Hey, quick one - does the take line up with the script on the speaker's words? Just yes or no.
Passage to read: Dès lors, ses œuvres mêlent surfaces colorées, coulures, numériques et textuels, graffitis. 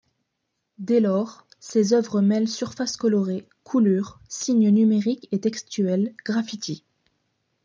no